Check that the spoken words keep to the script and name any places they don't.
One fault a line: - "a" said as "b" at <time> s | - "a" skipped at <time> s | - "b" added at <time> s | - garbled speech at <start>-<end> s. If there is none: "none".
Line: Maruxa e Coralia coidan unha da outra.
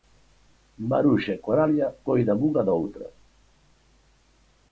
none